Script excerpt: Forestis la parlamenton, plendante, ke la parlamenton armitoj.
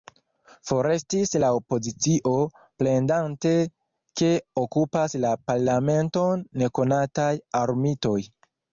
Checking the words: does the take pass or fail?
fail